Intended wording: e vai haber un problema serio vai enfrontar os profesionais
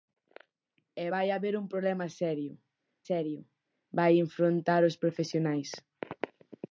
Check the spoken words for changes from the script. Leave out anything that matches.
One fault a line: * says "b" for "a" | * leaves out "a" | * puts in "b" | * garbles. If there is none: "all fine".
* puts in "serio"